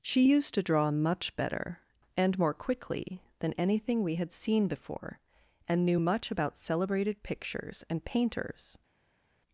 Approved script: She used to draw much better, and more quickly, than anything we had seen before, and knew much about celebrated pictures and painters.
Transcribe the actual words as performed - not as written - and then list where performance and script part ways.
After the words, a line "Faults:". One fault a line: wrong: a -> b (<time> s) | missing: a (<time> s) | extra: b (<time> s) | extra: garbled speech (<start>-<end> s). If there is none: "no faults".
She used to draw much better, and more quickly, than anything we had seen before, and knew much about celebrated pictures and painters.
Faults:
no faults